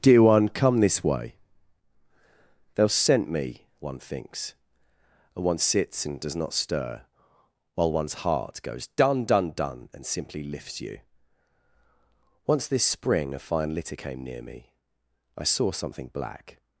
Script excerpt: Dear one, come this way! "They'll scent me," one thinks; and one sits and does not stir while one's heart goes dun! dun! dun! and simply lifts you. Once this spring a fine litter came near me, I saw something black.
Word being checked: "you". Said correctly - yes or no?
yes